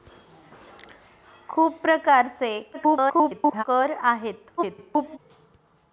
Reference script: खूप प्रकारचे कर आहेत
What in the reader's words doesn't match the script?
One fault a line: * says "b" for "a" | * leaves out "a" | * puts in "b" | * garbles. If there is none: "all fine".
* garbles
* garbles